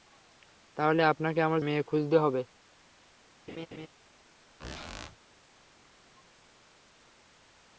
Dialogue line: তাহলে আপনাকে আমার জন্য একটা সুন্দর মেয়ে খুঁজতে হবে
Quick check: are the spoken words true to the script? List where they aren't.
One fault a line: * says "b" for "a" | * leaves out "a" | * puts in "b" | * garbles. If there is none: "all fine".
* leaves out "জন্য একটা সুন্দর"